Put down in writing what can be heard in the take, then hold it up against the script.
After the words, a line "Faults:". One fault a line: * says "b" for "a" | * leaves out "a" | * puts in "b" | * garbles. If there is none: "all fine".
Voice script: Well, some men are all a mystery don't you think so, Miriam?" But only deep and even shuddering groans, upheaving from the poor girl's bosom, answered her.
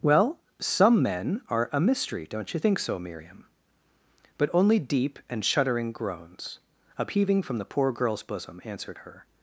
Well, some men are a mystery don't you think so, Miriam?" But only deep and shuddering groans, upheaving from the poor girl's bosom, answered her.
Faults:
* leaves out "all"
* leaves out "even"